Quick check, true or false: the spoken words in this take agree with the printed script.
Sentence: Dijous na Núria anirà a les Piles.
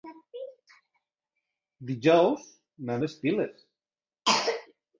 false